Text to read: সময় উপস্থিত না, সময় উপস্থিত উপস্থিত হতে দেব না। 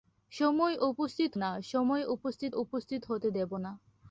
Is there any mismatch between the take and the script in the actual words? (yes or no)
no